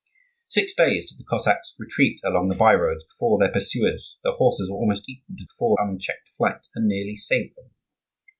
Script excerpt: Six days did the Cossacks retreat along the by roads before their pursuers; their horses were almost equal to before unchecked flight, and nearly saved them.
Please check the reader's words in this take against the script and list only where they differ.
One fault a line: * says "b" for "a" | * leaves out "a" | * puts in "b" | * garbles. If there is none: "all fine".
all fine